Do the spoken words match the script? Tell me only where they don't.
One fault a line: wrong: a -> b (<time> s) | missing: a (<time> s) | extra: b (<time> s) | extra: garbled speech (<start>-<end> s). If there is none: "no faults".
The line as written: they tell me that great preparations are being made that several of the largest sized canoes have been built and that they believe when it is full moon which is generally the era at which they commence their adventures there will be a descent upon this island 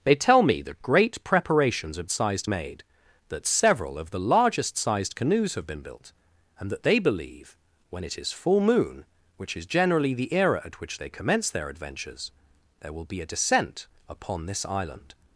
wrong: being -> sized (2.1 s)